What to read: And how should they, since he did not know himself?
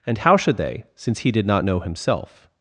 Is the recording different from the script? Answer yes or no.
no